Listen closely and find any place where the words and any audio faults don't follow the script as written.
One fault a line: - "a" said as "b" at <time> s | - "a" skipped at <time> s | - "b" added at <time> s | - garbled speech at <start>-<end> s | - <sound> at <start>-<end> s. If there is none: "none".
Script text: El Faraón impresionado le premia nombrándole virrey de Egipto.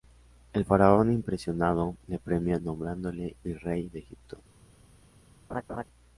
- laugh at 5.5-5.8 s